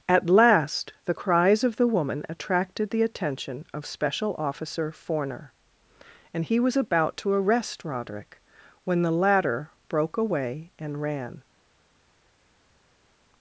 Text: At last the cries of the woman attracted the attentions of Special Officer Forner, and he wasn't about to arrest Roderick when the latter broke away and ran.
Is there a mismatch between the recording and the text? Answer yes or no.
yes